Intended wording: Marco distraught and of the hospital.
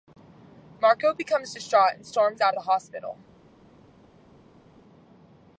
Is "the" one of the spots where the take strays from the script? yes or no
no